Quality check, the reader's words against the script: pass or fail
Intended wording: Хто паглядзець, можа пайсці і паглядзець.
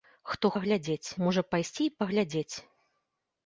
pass